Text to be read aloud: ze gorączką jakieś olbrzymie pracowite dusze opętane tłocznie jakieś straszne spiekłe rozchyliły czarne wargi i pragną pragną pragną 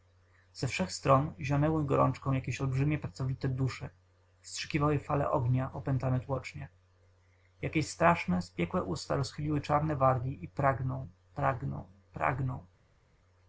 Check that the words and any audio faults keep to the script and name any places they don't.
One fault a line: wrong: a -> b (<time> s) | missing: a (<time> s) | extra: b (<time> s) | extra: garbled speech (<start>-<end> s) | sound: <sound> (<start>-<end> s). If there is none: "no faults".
extra: wszech stron zionęły (0.7 s)
extra: wstrzykiwały fale ognia (4.4 s)
extra: usta (8.8 s)